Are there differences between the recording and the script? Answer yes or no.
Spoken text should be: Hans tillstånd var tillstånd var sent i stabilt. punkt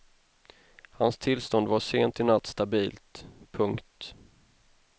yes